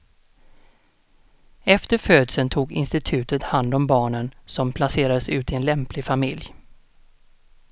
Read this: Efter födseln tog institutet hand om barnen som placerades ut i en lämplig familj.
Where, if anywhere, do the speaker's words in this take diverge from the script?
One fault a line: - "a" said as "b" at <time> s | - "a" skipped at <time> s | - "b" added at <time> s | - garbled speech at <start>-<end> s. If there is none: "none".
none